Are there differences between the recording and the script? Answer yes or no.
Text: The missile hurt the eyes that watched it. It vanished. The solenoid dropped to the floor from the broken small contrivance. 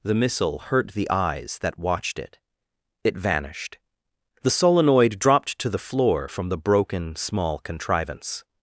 no